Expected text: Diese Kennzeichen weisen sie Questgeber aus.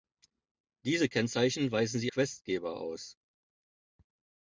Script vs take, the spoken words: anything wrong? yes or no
no